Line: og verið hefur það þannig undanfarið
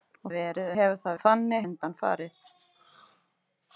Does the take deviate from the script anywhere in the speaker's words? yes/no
no